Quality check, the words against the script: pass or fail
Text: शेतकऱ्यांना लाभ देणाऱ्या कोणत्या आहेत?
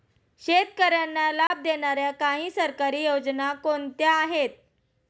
fail